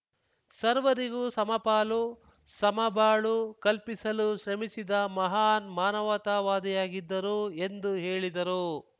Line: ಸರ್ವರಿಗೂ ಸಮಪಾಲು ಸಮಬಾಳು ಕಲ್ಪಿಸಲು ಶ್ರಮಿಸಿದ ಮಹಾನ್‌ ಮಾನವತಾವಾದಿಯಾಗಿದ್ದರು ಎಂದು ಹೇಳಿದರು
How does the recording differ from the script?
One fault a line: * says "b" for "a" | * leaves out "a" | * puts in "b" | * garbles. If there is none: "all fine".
all fine